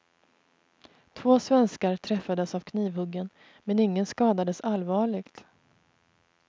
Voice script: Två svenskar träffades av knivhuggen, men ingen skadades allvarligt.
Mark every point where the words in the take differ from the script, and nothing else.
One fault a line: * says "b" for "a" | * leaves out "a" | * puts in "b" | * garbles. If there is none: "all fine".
all fine